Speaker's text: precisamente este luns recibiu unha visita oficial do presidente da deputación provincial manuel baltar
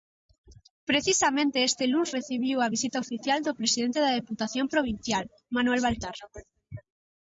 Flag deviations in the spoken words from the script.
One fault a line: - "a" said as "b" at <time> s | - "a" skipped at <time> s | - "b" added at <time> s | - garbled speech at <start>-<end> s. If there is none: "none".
- "unha" said as "a" at 2.6 s